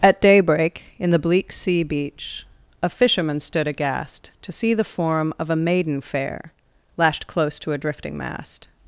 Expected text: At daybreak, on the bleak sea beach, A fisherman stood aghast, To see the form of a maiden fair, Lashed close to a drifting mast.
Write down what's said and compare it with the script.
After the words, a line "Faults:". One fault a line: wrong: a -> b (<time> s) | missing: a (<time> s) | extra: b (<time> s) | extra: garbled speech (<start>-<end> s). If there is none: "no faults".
At daybreak, in the bleak sea beach, A fisherman stood aghast, To see the form of a maiden fair, Lashed close to a drifting mast.
Faults:
wrong: on -> in (1.0 s)